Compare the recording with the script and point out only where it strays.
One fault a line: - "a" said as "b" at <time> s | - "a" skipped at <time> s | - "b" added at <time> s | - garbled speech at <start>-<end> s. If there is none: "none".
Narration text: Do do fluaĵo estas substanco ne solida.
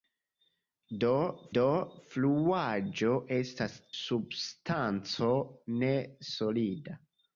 none